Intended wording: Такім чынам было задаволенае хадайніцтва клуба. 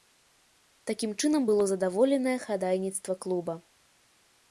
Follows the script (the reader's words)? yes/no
yes